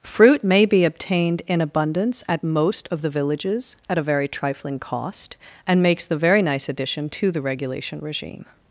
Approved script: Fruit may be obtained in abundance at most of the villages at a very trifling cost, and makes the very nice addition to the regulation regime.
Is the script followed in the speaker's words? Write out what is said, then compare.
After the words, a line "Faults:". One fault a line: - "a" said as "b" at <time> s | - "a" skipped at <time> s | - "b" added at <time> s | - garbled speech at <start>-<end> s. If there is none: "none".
Fruit may be obtained in abundance at most of the villages at a very trifling cost, and makes the very nice addition to the regulation regime.
Faults:
none